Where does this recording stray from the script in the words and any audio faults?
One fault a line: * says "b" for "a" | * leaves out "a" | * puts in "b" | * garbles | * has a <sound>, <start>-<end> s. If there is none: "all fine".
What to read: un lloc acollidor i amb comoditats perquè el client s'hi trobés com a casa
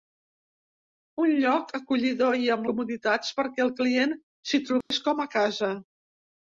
* has a dropout, 4.8-4.9 s